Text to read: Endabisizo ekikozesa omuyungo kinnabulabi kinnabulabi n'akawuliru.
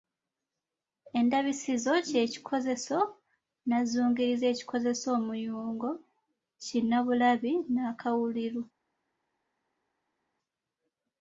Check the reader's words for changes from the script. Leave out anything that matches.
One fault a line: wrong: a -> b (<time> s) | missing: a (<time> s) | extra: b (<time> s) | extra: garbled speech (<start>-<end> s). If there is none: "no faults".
extra: kye kikozeso nnanzungirizi (2.1 s)
missing: kinnabulabi (7.5 s)